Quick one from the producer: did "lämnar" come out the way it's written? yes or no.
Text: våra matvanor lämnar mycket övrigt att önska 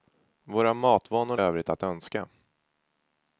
no